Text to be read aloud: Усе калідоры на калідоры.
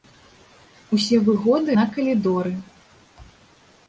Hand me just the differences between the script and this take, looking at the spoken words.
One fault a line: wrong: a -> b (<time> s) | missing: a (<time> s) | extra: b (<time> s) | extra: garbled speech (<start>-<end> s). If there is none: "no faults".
wrong: калідоры -> выгоды (1.3 s)